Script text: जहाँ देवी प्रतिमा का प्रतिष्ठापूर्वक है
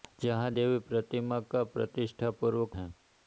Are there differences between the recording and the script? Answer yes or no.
no